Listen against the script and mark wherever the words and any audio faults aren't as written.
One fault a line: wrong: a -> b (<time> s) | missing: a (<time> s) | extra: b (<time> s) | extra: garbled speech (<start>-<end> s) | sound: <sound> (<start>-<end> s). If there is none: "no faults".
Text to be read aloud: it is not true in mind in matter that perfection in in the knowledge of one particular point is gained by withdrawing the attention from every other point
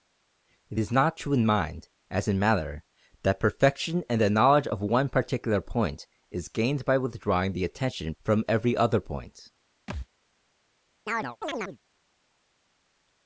extra: as (2.1 s)
missing: in (4.2 s)
sound: thud (9.9-10.1 s)
sound: chirp (11.1-11.8 s)